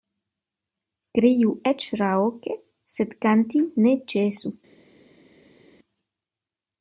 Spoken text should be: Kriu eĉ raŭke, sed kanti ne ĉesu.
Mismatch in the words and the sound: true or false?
false